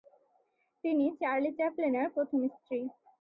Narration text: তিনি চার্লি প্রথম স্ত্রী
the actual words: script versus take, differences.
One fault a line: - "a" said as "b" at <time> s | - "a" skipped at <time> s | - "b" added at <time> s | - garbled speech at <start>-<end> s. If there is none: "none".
- "চ্যাপলিনের" added at 1.6 s